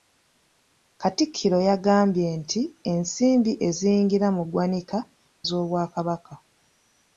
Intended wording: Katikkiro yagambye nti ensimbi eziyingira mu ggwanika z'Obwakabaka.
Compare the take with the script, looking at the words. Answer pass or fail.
pass